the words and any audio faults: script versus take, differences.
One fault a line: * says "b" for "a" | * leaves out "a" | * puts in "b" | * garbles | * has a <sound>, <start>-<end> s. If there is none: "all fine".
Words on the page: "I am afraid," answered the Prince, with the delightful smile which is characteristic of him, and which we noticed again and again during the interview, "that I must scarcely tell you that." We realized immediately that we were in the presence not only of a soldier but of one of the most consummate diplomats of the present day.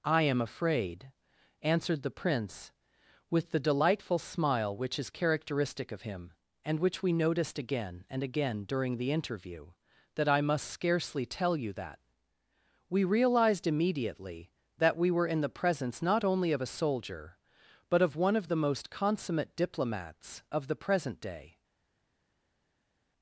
all fine